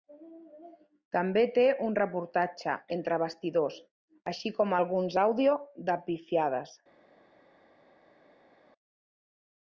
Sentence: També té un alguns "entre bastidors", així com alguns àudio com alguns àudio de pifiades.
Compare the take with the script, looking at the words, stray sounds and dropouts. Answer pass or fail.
fail